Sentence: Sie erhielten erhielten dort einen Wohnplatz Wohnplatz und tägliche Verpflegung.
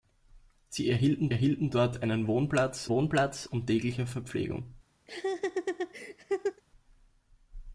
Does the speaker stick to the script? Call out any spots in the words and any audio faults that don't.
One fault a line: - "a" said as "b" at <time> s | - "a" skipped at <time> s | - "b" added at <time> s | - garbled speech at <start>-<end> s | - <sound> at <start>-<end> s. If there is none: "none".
- laugh at 5.1-6.6 s